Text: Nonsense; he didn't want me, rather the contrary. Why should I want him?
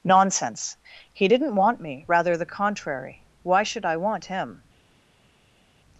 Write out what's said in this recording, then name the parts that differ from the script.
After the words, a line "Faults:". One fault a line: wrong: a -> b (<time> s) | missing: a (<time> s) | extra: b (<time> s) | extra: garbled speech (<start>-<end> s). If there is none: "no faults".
Nonsense; he didn't want me, rather the contrary. Why should I want him?
Faults:
no faults